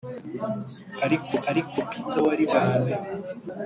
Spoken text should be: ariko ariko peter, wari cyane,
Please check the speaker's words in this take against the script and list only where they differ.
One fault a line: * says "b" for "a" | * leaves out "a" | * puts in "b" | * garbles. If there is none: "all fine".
all fine